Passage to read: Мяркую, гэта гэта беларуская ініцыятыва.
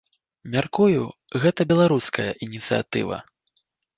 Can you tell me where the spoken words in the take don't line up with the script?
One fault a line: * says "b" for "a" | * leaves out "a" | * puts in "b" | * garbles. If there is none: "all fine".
* leaves out "гэта"